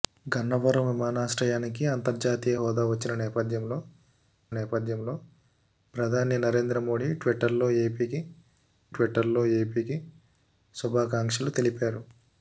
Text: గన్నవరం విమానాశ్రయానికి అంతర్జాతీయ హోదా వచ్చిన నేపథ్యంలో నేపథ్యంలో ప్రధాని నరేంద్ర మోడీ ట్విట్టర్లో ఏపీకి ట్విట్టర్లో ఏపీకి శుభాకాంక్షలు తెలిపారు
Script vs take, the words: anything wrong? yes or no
no